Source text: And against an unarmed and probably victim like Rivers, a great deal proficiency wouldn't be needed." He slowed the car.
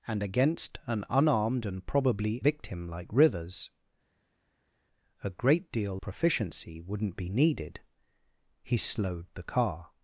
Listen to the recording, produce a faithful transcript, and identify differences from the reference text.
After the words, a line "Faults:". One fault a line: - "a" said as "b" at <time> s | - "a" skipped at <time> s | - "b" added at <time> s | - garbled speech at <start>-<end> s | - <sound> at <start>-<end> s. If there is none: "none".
And against an unarmed and probably victim like Rivers, a great deal proficiency wouldn't be needed." He slowed the car.
Faults:
none